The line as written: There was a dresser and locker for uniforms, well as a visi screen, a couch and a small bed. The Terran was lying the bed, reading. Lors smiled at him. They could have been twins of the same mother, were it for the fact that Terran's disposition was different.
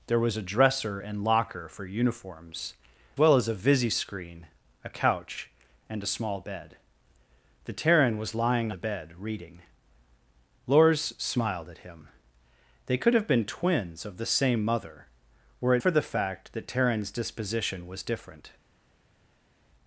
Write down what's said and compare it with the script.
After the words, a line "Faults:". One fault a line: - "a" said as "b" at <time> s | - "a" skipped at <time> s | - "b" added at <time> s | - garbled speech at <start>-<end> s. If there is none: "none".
There was a dresser and locker for uniforms, well as a visi screen, a couch and a small bed. The Terran was lying the bed, reading. Lors smiled at him. They could have been twins of the same mother, were it for the fact that Terran's disposition was different.
Faults:
none